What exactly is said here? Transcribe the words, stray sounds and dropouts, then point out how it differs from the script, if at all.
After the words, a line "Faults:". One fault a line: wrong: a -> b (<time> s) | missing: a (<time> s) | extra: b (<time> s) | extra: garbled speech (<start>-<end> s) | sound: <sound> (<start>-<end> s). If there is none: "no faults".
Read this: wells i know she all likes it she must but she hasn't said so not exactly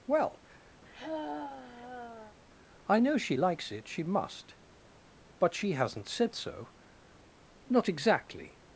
well i know she likes it she must but she hasn't said so not exactly
Faults:
wrong: wells -> well (0.1 s)
sound: sigh (0.8-2.4 s)
missing: all (3.4 s)